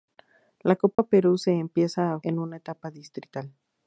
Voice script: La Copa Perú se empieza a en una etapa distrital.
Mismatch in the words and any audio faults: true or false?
true